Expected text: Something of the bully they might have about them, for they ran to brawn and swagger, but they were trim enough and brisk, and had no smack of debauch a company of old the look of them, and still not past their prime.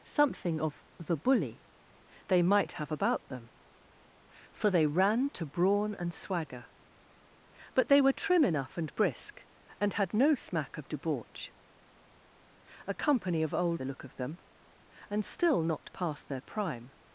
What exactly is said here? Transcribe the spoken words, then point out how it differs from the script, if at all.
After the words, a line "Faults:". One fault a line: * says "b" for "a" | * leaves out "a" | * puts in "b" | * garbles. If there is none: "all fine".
Something of the bully they might have about them, for they ran to brawn and swagger, but they were trim enough and brisk, and had no smack of debauch a company of old the look of them, and still not past their prime.
Faults:
all fine